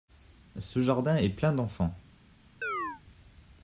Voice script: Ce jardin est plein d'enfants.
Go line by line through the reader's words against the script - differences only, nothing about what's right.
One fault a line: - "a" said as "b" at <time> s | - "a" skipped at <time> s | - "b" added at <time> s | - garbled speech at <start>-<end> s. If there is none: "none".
none